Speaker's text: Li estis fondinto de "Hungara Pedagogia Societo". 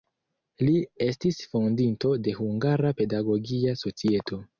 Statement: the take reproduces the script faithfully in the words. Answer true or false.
true